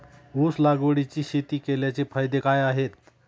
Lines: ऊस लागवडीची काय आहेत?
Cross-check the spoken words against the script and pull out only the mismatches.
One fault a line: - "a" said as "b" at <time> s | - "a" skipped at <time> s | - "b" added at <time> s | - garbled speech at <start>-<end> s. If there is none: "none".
- "शेती केल्याचे फायदे" added at 1.2 s